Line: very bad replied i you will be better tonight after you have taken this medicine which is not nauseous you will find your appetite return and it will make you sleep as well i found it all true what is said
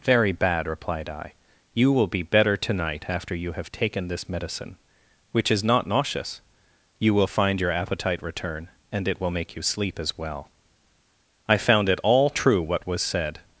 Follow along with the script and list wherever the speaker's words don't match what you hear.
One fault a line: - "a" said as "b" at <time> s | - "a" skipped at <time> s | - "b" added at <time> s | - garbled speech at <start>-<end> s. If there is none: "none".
- "is" said as "was" at 12.9 s